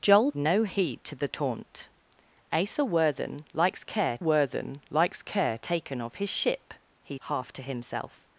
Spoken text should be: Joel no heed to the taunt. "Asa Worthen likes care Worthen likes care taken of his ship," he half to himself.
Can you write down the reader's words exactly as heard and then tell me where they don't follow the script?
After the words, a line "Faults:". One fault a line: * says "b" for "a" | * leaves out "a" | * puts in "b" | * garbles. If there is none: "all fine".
Joel no heed to the taunt. "Asa Worthen likes care Worthen likes care taken of his ship," he half to himself.
Faults:
all fine